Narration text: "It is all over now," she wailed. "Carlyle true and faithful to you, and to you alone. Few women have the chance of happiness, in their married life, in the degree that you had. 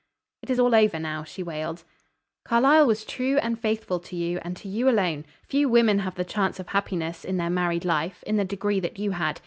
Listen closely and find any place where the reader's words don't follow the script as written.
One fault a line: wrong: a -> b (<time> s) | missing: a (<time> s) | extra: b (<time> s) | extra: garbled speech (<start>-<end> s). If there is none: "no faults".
extra: was (2.8 s)